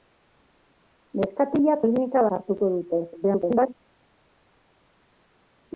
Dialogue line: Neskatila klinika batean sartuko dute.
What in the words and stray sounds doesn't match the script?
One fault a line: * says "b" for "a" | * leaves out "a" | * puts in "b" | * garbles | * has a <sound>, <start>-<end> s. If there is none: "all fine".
* leaves out "batean"
* garbles